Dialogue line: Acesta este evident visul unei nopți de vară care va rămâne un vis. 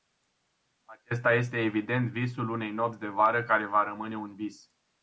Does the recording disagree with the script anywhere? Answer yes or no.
no